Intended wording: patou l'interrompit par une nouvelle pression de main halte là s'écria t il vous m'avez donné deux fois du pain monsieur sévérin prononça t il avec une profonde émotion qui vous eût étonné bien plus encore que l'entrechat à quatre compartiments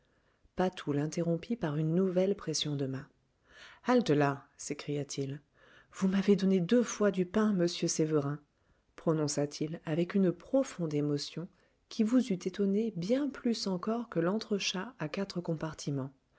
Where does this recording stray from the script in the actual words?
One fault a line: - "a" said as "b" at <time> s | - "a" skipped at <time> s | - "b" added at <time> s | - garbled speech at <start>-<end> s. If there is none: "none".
none